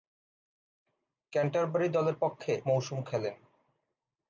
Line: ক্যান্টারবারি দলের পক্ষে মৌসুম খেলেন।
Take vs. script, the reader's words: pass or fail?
pass